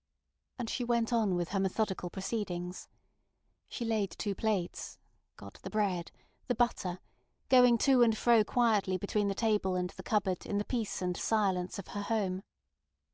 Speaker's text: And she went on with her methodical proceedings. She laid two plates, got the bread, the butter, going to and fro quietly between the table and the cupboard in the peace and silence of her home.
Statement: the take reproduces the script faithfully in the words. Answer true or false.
true